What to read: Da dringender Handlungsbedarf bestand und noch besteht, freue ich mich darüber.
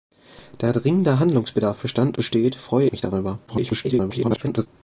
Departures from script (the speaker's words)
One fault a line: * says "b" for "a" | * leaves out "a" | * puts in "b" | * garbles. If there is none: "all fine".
* leaves out "und noch"
* leaves out "ich"
* garbles